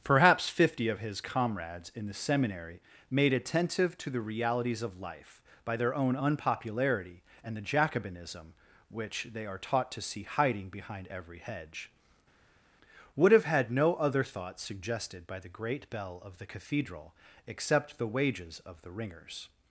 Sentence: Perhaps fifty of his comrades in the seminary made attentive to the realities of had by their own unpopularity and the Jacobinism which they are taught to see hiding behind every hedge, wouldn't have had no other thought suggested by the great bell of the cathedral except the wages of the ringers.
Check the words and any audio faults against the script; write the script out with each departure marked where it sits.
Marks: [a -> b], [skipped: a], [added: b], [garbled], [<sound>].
Perhaps fifty of his comrades in the seminary made attentive to the realities of [had -> life] by their own unpopularity and the Jacobinism which they are taught to see hiding behind every hedge, [wouldn't -> would] have had no other thought suggested by the great bell of the cathedral except the wages of the ringers.